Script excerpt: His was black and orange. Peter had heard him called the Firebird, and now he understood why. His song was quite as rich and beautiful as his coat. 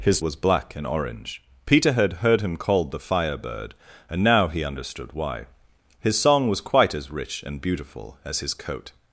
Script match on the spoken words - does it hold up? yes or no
yes